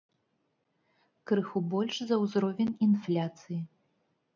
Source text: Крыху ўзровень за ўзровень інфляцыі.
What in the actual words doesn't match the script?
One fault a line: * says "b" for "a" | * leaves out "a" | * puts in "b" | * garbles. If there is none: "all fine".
* says "больш" for "ўзровень"